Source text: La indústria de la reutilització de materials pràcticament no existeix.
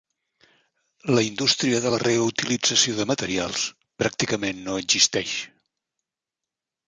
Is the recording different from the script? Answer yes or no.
no